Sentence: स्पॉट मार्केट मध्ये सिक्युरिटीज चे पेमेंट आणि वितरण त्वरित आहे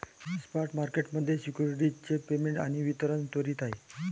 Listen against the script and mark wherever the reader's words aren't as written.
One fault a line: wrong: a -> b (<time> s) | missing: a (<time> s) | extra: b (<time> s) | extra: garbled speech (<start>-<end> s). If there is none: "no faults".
no faults